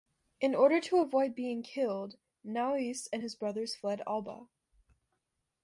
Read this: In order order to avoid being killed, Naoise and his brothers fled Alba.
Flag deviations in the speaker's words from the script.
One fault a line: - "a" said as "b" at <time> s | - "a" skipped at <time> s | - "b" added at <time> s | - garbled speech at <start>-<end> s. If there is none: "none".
- "order" skipped at 0.8 s